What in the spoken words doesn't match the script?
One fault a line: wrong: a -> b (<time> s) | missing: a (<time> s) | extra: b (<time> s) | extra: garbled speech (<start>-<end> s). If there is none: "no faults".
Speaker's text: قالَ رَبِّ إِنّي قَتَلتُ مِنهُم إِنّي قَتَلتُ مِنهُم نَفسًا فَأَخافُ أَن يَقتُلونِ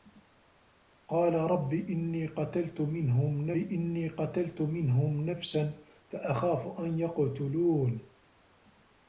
no faults